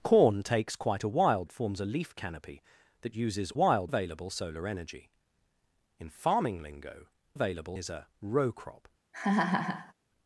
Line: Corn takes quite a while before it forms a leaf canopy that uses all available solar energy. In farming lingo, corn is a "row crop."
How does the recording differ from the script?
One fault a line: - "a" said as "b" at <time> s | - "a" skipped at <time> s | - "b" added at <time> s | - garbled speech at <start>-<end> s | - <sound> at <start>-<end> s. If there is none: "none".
- "before" skipped at 1.4 s
- "all" said as "while" at 3.5 s
- "corn" said as "available" at 7.3 s
- laugh at 9.1-9.9 s